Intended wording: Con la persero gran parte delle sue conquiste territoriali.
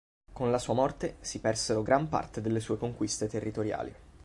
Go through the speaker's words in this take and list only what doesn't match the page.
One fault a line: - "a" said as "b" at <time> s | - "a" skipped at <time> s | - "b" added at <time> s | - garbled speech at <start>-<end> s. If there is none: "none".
- "sua morte si" added at 0.6 s